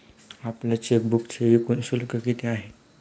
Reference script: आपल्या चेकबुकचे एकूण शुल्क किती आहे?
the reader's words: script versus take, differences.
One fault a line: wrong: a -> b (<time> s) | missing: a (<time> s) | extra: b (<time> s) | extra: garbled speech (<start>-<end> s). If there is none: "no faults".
no faults